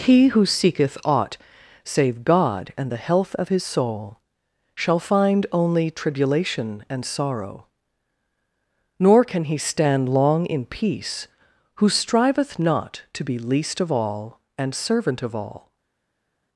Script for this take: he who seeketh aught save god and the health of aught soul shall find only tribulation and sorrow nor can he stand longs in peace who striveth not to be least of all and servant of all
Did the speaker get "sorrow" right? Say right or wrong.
right